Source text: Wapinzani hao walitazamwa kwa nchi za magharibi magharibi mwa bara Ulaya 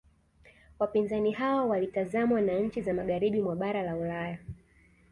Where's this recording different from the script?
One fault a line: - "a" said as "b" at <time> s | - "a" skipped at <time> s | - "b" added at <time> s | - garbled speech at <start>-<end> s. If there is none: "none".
- "kwa" said as "na" at 2.4 s
- "magharibi" skipped at 3.4 s
- "la" added at 3.8 s